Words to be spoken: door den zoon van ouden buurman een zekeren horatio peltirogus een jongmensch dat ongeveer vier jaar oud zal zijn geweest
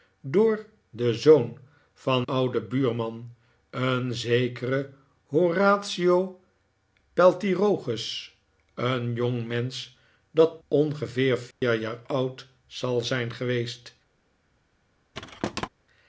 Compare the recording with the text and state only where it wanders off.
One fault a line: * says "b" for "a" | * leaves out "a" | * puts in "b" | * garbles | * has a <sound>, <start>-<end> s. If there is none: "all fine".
* has a dropout, 11.5-11.6 s
* has a thud, 15.1-15.7 s